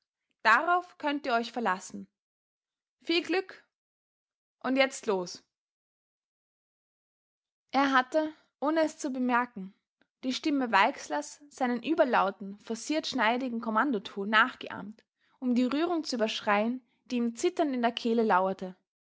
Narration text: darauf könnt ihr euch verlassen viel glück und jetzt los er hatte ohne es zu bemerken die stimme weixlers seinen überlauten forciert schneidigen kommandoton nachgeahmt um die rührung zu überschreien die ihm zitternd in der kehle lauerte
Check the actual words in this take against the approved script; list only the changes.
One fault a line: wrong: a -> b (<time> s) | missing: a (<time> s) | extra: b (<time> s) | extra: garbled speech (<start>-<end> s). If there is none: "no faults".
no faults